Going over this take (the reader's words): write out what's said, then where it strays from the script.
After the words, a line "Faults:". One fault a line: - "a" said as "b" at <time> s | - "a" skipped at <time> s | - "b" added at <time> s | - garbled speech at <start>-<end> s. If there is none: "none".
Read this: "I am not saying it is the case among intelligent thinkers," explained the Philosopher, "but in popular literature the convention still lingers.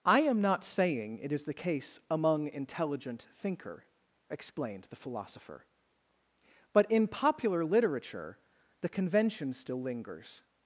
"I am not saying it is the case among intelligent thinker," explained the Philosopher, "but in popular literature the convention still lingers.
Faults:
- "thinkers" said as "thinker" at 3.4 s